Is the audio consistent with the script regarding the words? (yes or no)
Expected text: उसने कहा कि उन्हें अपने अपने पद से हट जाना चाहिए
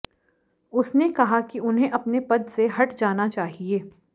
no